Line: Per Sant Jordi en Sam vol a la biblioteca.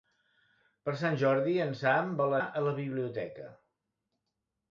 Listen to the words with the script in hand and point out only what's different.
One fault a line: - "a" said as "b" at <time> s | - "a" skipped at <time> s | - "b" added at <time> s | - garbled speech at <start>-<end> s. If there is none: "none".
none